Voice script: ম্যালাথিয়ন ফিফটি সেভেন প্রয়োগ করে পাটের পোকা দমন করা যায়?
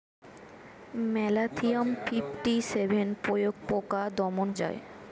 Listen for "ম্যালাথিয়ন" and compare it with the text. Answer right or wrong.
right